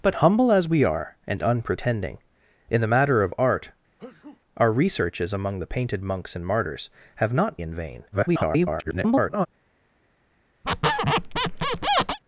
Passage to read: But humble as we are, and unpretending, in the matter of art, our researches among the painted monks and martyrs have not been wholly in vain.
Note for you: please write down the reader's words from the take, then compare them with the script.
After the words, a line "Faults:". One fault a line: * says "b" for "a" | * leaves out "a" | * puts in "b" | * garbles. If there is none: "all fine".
But humble as we are, and unpretending, in the matter of art, our researches among the painted monks and martyrs have not in vain. [garbled]
Faults:
* leaves out "been wholly"
* garbles